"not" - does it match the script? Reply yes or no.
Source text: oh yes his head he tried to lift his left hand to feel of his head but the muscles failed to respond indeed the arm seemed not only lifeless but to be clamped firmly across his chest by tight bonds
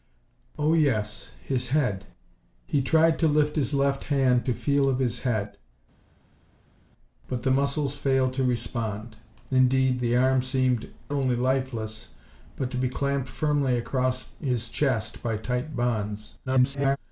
no